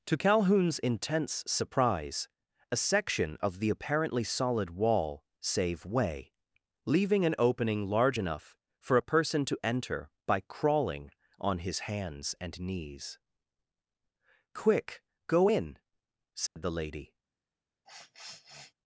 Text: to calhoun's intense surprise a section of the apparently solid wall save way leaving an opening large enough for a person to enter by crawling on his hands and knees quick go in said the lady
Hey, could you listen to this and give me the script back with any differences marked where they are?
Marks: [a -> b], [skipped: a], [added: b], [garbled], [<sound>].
to calhoun's intense surprise a section of the apparently solid wall save way leaving an opening large enough for a person to enter by crawling on his hands and knees quick go in said [dropout] the lady [sniff]